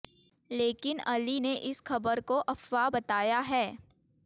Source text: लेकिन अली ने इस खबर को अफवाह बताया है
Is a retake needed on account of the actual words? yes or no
no